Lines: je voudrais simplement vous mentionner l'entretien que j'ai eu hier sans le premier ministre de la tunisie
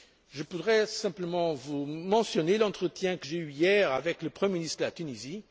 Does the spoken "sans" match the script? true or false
false